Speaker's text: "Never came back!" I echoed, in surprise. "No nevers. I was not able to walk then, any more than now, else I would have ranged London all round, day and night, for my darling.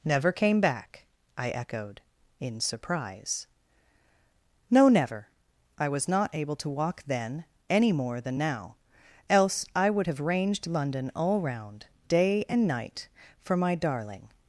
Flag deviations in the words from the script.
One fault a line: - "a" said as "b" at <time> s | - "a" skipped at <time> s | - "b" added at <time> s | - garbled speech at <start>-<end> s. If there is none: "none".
- "nevers" said as "never" at 4.9 s